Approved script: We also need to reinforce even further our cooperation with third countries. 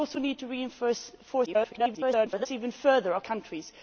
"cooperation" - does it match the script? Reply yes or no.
no